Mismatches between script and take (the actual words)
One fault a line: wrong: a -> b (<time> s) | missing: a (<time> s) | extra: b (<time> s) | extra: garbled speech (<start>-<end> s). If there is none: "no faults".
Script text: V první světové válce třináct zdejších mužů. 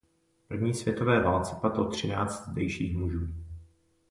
extra: padlo (1.6 s)